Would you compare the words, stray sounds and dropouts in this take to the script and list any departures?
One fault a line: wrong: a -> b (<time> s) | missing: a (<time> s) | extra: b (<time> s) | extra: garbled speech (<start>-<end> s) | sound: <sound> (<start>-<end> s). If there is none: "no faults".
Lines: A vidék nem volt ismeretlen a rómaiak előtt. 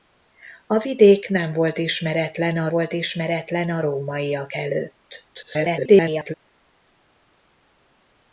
extra: volt ismeretlen a (2.7 s)
extra: garbled speech (5.3-6.3 s)